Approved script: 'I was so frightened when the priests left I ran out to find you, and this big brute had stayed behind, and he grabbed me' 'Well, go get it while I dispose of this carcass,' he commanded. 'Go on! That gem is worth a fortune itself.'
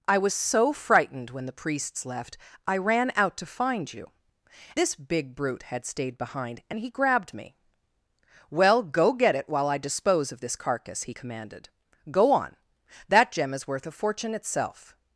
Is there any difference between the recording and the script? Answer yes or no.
yes